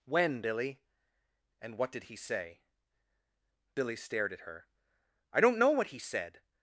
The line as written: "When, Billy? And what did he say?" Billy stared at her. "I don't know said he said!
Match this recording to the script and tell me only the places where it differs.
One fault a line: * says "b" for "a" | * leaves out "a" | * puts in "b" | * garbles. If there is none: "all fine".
* says "what" for "said"